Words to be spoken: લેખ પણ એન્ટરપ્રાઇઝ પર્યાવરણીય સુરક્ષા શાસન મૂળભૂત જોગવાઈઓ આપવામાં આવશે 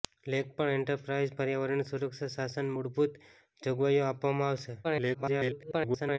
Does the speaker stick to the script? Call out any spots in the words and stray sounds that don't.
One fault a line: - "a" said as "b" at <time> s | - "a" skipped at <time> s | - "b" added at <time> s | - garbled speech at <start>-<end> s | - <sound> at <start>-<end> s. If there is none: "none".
- garbled speech at 4.8-6.2 s